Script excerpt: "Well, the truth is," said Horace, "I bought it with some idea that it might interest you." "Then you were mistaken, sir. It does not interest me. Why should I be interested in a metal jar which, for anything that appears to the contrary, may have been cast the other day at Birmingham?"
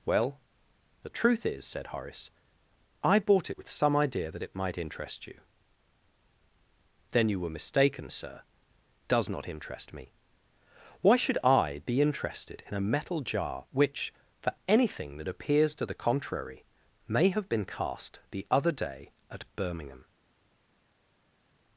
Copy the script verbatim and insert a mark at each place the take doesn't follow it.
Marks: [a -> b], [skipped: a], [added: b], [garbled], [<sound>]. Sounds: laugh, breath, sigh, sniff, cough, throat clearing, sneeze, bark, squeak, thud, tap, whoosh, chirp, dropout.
"Well, the truth is," said Horace, "I bought it with some idea that it might interest you." "Then you were mistaken, sir. [skipped: It] does not interest me. Why should I be interested in a metal jar which, for anything that appears to the contrary, may have been cast the other day at Birmingham?"